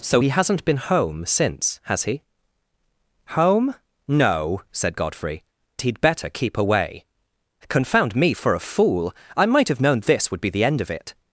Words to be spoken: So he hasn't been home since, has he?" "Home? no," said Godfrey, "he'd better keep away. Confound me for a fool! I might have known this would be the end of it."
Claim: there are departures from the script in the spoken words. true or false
false